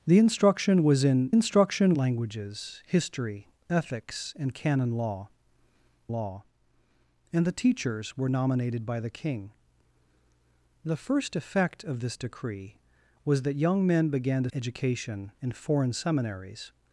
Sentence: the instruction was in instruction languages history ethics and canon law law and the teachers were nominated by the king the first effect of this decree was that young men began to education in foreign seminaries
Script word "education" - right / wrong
right